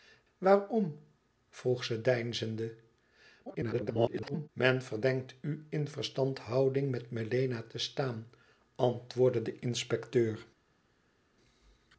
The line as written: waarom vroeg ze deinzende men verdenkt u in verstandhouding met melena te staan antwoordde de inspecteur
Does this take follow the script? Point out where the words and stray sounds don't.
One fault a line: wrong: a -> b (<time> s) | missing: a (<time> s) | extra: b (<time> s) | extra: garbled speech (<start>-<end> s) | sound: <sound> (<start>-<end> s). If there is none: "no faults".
extra: garbled speech (3.5-4.5 s)